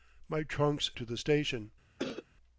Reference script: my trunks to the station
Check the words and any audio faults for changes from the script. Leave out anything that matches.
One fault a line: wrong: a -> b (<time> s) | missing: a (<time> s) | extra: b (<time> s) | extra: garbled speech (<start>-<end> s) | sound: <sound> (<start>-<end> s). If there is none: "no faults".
sound: cough (2.0-2.3 s)